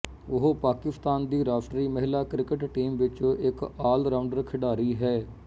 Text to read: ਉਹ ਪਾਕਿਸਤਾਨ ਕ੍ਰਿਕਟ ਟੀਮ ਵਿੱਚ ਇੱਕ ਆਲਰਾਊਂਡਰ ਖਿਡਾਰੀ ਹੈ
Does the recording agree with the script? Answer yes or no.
no